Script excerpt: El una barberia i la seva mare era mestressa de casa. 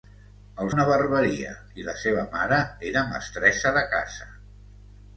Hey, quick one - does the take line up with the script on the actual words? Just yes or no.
yes